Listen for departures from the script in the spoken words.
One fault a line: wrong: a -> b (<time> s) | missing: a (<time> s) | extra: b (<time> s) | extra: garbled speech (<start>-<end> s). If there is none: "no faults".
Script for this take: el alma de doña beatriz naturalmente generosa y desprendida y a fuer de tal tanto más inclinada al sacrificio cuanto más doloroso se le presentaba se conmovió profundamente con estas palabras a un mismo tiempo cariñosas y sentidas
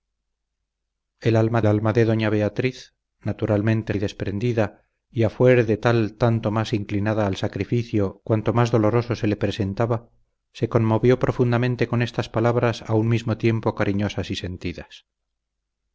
extra: alma (1.7 s)
missing: generosa (3.9 s)